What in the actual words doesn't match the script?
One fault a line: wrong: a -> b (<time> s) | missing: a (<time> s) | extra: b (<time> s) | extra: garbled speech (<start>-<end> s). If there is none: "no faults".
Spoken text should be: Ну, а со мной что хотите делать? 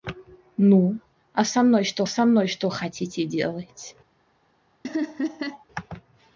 extra: со мной что (2.1 s)